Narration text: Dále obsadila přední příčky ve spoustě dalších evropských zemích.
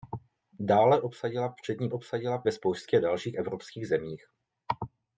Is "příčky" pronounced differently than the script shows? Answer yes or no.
yes